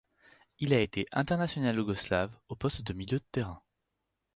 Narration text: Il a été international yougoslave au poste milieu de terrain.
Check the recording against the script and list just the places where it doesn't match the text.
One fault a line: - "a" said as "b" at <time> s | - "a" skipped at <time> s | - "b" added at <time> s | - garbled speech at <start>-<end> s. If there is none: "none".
- "de" added at 2.8 s